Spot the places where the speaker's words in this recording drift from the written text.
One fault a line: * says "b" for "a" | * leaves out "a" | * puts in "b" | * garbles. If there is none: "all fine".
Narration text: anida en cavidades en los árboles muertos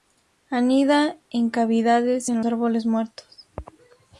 * leaves out "los"